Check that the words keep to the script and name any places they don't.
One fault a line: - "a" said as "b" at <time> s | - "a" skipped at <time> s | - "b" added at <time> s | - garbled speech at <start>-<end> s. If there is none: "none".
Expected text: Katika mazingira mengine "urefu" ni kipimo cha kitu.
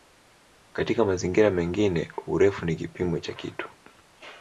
none